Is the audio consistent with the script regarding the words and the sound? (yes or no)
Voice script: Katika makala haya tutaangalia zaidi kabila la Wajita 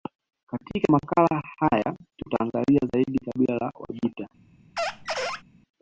no